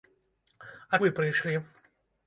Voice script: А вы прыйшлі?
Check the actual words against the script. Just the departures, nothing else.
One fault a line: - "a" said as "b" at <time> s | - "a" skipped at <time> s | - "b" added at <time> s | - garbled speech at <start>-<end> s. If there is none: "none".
none